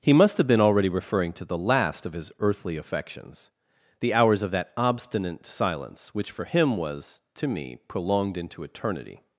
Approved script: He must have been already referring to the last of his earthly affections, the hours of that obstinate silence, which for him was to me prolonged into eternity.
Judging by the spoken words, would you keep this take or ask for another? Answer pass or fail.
pass